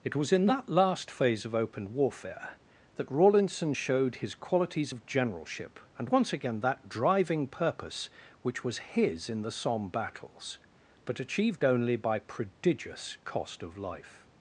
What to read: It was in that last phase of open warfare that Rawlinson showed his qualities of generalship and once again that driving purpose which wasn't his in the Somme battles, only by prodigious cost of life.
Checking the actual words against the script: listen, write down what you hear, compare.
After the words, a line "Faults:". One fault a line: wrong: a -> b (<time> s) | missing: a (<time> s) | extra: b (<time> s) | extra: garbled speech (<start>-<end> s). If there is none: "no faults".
It was in that last phase of open warfare that Rawlinson showed his qualities of generalship and once again that driving purpose which was his in the Somme battles, but achieved only by prodigious cost of life.
Faults:
wrong: wasn't -> was (8.6 s)
extra: but achieved (11.0 s)